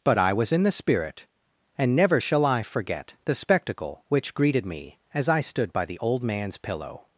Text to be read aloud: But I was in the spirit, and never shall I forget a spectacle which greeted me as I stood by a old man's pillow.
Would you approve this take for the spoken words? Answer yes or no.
no